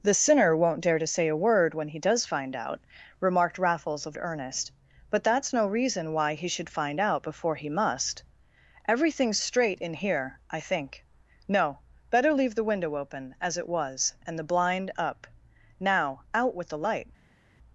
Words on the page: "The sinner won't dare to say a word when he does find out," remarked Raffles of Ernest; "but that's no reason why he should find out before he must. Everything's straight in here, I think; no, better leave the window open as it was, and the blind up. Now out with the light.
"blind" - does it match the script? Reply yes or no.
yes